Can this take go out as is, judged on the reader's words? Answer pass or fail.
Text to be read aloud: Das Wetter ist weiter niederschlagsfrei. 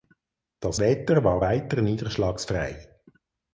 fail